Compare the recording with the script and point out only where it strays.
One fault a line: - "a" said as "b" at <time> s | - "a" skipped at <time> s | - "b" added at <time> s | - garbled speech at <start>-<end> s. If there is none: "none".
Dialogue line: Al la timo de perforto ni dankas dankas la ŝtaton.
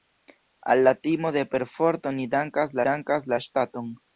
none